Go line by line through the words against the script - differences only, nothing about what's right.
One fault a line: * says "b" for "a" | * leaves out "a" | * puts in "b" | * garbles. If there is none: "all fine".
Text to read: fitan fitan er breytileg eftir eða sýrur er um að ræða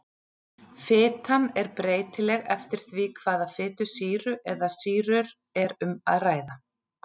* leaves out "fitan"
* puts in "því hvaða fitusýru"